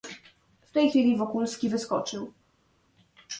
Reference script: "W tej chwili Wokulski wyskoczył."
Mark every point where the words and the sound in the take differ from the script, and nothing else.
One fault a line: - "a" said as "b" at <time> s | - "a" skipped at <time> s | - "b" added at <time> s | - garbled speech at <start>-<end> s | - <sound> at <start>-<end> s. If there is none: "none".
none